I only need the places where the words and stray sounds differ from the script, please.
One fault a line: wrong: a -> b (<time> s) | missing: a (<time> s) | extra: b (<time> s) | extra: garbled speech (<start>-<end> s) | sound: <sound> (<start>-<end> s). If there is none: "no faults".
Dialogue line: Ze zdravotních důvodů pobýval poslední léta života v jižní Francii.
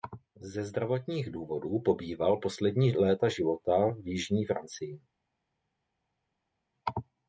no faults